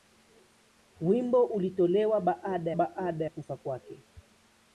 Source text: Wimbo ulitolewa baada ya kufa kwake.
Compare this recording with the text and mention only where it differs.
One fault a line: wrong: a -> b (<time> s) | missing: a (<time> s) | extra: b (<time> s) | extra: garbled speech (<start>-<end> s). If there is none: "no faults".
extra: baada (2.7 s)